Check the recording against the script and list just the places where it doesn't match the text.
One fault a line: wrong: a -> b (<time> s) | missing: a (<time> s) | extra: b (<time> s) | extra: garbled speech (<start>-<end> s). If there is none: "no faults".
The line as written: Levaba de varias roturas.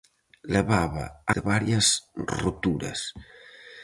no faults